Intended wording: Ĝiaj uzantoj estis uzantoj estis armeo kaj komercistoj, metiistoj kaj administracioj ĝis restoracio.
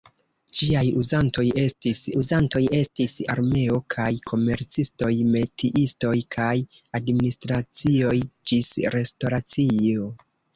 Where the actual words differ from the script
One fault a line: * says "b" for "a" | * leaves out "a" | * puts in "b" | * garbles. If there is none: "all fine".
all fine